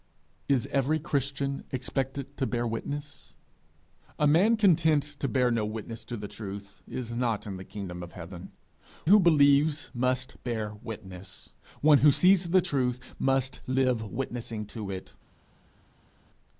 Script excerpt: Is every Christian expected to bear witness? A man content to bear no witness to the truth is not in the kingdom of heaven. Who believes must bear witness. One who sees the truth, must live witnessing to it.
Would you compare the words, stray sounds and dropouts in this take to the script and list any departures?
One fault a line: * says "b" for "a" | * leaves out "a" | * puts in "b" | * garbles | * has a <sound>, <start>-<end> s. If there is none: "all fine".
all fine